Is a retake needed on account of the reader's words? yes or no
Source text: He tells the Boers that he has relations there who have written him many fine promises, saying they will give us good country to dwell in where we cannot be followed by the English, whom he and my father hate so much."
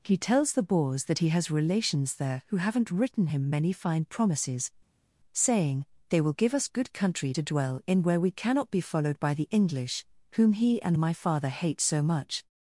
yes